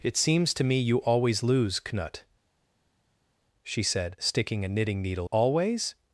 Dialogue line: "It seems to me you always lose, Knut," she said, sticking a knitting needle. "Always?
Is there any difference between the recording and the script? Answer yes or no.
no